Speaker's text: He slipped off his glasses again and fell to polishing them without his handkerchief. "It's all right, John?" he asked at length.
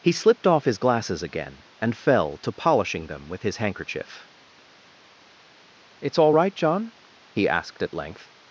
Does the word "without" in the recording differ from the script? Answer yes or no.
yes